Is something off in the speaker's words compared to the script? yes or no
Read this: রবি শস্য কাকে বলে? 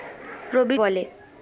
yes